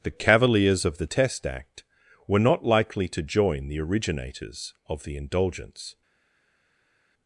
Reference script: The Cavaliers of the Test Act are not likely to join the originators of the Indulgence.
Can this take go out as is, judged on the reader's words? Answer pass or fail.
fail